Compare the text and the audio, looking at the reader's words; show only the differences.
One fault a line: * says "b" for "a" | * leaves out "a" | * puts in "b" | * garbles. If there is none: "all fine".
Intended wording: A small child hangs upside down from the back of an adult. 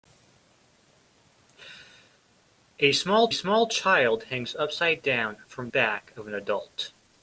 * puts in "small"
* leaves out "the"